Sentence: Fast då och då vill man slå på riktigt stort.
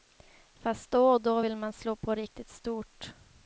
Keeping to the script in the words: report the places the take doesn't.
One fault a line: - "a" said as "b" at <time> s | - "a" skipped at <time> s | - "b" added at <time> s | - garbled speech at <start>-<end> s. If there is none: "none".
none